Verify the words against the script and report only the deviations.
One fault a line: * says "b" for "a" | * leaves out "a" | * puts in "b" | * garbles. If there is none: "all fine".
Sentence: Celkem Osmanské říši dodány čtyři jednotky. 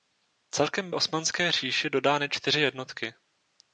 all fine